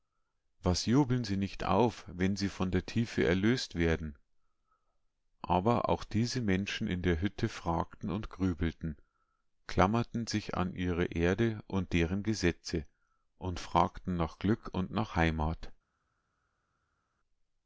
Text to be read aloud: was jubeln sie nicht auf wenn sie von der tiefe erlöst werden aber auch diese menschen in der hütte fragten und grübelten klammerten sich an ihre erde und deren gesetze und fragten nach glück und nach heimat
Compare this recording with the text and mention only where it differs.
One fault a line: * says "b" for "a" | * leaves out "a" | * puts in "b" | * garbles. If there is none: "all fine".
all fine